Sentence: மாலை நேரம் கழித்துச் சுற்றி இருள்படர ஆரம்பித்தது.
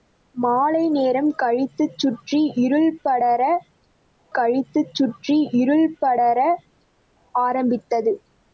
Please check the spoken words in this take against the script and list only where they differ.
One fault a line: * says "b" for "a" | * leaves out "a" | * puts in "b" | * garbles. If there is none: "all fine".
* puts in "கழித்துச் சுற்றி இருள்படர"